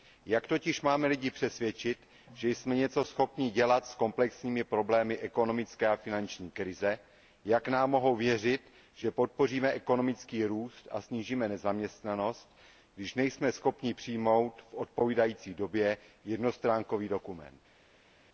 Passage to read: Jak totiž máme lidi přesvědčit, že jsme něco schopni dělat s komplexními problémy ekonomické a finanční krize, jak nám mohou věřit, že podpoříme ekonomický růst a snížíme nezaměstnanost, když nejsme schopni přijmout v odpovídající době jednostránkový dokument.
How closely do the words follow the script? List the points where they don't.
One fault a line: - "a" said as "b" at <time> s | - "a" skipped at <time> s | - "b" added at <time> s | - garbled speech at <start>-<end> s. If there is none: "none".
none